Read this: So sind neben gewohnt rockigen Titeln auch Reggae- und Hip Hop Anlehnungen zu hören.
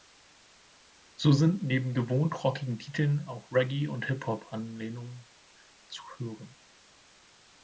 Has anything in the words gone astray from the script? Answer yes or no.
no